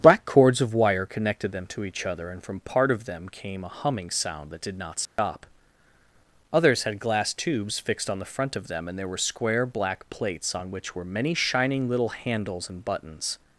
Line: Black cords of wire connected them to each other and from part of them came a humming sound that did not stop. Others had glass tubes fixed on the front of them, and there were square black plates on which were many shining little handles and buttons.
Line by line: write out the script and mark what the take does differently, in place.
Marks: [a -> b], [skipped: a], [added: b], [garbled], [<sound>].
Black cords of wire connected them to each other and from part of them came a humming sound that did not stop. [dropout] Others had glass tubes fixed on the front of them, and there were square black plates on which were many shining little handles and buttons.